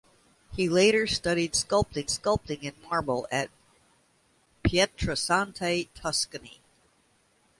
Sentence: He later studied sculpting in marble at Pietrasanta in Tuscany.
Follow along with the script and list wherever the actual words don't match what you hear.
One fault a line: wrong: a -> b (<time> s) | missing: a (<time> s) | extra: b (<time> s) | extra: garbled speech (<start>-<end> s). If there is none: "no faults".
extra: sculpting (2.1 s)
missing: in (5.9 s)